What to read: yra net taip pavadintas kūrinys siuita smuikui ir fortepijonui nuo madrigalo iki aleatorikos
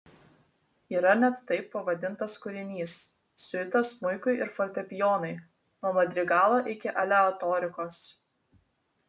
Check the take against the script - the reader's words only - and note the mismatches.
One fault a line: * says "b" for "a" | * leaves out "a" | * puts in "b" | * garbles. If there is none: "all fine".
all fine